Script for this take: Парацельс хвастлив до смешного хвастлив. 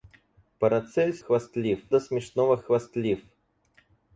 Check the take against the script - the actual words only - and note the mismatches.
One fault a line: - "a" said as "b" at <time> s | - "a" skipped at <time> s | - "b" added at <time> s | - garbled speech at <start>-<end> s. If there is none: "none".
none